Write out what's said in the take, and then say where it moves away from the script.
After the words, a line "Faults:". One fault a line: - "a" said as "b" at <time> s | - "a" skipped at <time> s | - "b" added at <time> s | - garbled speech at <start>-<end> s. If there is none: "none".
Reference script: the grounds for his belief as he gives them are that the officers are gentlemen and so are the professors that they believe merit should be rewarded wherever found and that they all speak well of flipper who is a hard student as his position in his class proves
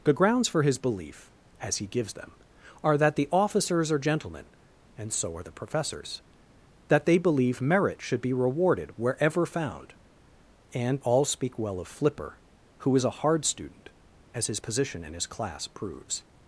the grounds for his belief as he gives them are that the officers are gentlemen and so are the professors that they believe merit should be rewarded wherever found and all speak well of flipper who is a hard student as his position in his class proves
Faults:
- "that they" skipped at 11.0 s